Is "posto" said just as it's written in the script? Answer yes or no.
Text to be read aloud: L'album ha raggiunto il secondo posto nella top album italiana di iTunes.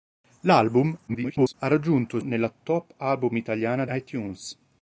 no